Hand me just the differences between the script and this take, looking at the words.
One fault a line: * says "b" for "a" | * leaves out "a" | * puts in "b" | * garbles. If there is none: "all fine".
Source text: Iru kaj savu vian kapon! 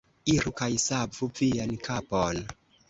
all fine